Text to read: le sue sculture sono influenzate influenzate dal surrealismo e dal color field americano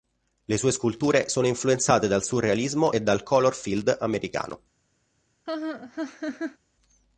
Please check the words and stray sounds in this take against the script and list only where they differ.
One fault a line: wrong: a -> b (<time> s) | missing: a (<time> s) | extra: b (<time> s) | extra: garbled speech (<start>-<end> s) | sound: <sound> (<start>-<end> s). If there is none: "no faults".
missing: influenzate (2.1 s)
sound: laugh (5.5-6.6 s)